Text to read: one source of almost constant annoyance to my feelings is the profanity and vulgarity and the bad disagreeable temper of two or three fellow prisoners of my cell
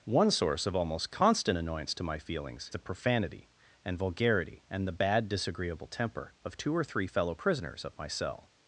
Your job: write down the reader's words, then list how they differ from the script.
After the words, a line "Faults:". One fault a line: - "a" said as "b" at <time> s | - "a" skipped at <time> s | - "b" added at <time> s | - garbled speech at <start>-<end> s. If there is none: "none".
one source of almost constant annoyance to my feelings the profanity and vulgarity and the bad disagreeable temper of two or three fellow prisoners of my cell
Faults:
- "is" skipped at 2.7 s